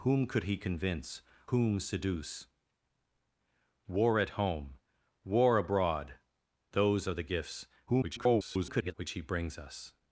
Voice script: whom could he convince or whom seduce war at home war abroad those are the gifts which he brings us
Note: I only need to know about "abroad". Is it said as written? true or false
true